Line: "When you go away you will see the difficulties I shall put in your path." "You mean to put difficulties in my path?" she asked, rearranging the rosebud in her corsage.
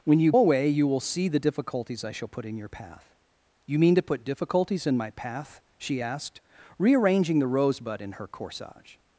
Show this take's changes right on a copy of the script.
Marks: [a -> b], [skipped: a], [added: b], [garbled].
"When you [skipped: go] away you will see the difficulties I shall put in your path." "You mean to put difficulties in my path?" she asked, rearranging the rosebud in her corsage.